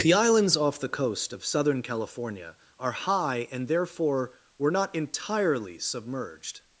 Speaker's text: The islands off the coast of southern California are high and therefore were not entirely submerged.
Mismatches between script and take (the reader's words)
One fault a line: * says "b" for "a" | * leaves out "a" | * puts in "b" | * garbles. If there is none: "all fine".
all fine